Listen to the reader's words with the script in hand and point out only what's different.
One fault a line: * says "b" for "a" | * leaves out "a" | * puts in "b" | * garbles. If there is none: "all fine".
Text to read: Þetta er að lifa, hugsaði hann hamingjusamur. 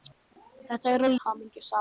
* leaves out "lifa hugsaði hann"